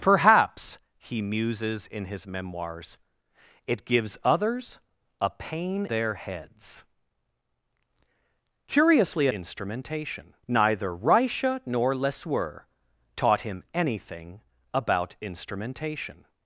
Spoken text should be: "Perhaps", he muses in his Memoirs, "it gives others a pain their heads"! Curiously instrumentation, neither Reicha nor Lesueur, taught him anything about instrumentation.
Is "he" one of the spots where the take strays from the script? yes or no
no